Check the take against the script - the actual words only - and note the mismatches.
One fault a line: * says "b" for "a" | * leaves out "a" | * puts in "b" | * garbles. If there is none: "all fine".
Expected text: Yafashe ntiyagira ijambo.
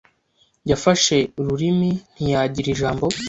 * puts in "ururimi"